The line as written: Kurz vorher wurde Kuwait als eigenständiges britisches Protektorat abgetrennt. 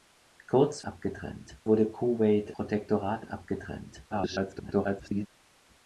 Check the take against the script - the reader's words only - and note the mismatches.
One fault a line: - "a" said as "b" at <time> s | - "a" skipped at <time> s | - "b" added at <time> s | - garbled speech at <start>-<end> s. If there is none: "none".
- "vorher" said as "abgetrennt" at 0.8 s
- "als eigenständiges britisches" skipped at 2.6 s
- garbled speech at 4.1-5.3 s